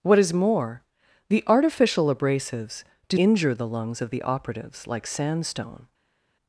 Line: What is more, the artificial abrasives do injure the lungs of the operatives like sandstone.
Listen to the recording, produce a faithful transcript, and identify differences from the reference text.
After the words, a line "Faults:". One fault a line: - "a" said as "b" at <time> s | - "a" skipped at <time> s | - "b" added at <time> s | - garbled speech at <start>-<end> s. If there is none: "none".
What is more, the artificial abrasives do injure the lungs of the operatives like sandstone.
Faults:
none